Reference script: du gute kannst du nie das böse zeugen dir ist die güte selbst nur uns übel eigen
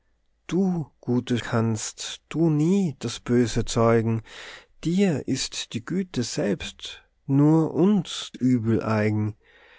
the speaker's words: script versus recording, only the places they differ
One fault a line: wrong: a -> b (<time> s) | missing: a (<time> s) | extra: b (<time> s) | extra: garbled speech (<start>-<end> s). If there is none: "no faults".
no faults